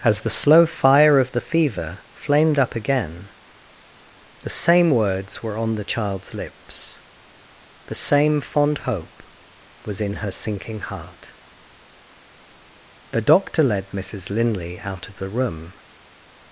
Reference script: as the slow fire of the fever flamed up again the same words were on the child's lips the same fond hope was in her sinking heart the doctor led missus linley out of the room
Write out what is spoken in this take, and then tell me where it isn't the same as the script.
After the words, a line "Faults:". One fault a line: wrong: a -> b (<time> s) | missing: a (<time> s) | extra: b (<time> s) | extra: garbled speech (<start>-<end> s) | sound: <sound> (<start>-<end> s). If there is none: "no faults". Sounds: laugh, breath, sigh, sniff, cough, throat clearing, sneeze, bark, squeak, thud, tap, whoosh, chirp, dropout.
as the slow fire of the fever flamed up again the same words were on the child's lips the same fond hope was in her sinking heart the doctor led missus linley out of the room
Faults:
no faults